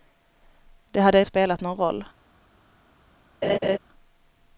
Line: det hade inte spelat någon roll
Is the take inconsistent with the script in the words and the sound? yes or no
yes